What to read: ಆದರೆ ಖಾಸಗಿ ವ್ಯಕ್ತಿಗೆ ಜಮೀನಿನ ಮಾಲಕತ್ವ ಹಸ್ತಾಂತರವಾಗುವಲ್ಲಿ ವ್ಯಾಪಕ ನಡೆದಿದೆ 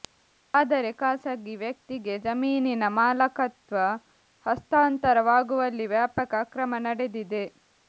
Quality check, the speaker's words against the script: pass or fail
fail